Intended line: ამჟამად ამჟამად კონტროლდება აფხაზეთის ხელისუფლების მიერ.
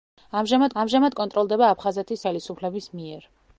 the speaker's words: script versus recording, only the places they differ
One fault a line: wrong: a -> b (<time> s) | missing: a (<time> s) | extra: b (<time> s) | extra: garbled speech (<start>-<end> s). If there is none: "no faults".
no faults